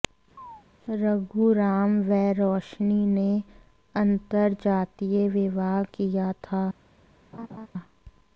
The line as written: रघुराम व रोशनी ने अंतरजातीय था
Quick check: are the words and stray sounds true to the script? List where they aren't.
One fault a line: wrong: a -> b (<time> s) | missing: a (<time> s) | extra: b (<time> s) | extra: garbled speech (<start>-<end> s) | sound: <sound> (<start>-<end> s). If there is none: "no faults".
sound: chirp (0.4-0.6 s)
extra: विवाह किया (5.3 s)
sound: laugh (7.3-7.7 s)